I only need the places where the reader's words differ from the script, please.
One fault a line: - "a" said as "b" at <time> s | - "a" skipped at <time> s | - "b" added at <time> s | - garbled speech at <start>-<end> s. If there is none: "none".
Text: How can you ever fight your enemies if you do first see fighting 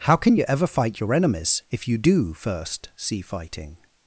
none